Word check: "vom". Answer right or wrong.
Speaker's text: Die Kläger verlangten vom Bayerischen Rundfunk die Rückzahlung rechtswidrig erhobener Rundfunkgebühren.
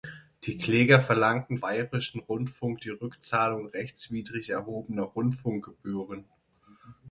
wrong